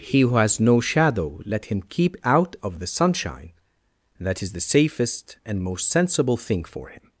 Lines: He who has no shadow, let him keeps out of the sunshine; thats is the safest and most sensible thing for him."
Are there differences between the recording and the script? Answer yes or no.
yes